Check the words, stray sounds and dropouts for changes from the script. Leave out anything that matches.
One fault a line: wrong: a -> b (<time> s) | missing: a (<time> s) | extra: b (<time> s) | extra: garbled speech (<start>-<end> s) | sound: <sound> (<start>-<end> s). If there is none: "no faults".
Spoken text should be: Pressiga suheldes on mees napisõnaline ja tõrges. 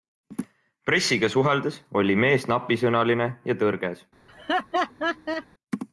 wrong: on -> oli (2.0 s)
sound: laugh (4.3-5.5 s)